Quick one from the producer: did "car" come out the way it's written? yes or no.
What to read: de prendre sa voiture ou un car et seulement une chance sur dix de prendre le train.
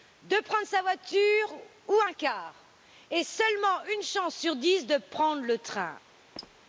yes